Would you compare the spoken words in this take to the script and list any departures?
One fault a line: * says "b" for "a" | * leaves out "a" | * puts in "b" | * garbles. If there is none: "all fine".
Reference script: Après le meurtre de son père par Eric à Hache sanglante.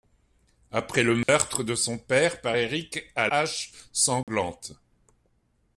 all fine